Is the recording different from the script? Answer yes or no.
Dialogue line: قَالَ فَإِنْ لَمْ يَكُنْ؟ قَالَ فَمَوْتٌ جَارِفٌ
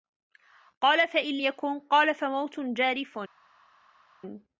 yes